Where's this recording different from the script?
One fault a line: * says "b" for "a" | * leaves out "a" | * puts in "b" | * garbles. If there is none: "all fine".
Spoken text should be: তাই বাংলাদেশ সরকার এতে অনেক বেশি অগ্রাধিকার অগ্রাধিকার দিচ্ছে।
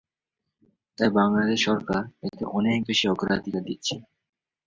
* leaves out "অগ্রাধিকার"